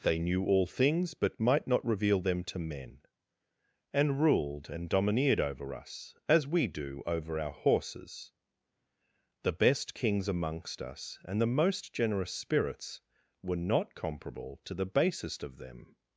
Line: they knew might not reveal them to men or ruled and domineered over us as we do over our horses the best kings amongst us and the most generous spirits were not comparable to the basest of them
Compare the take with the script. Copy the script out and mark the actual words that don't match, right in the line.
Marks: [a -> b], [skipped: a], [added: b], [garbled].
they knew [added: all things but] might not reveal them to men [or -> and] ruled and domineered over us as we do over our horses the best kings amongst us and the most generous spirits were not comparable to the basest of them